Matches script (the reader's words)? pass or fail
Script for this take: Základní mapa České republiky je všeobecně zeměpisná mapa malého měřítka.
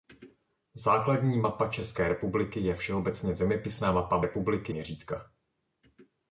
fail